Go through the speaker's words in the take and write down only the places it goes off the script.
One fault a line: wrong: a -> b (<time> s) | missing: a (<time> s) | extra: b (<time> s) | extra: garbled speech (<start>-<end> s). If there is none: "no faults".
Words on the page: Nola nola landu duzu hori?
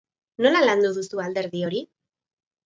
missing: nola (0.6 s)
extra: alderdi (1.2 s)